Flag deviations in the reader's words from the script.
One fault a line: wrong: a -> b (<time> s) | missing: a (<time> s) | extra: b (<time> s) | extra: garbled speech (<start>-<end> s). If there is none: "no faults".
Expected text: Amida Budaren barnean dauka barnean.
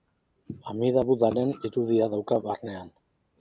wrong: barnean -> irudia (1.7 s)